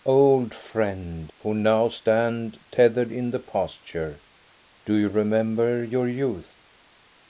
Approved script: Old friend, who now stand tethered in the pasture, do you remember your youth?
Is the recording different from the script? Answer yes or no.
no